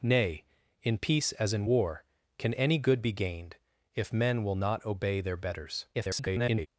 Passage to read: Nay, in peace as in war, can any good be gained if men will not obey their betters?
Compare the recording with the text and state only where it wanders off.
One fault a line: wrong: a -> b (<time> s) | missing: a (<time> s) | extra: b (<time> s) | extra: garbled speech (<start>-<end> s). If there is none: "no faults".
extra: garbled speech (5.9-6.7 s)